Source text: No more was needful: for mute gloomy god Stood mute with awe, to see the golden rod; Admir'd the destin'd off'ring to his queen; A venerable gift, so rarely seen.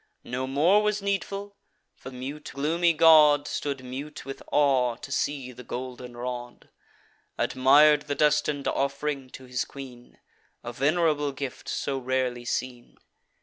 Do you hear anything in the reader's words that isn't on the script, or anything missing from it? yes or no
no